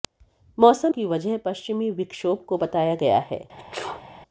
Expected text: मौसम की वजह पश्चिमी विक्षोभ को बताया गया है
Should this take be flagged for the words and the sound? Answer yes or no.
yes